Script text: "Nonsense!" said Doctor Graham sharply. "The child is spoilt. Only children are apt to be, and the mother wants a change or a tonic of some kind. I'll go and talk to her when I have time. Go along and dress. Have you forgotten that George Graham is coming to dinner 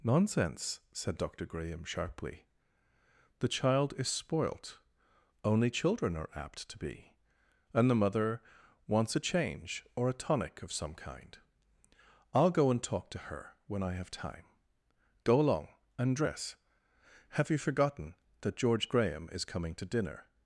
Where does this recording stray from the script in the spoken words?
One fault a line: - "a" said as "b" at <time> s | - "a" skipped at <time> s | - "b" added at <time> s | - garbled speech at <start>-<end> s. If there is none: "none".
none